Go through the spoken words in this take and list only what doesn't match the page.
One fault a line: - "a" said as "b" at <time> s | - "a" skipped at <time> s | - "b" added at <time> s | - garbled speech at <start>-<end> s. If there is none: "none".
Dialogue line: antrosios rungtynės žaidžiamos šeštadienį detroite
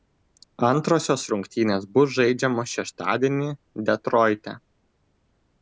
- "bus" added at 2.0 s